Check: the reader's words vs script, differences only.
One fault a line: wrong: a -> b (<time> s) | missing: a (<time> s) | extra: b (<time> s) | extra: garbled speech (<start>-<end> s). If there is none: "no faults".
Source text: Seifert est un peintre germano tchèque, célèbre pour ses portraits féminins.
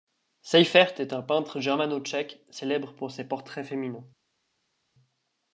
no faults